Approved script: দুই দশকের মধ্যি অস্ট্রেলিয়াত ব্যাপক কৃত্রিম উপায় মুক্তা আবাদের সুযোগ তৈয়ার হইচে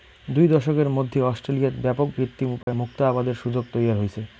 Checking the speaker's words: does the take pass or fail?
pass